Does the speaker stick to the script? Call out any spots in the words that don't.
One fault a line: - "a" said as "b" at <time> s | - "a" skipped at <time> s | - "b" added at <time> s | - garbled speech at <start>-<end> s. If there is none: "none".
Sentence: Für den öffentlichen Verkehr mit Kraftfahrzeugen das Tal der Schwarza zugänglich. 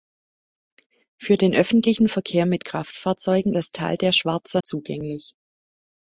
none